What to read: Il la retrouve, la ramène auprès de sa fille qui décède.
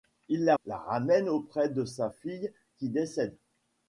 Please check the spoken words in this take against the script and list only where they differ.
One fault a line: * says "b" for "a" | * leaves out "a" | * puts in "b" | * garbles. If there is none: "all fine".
* leaves out "retrouve"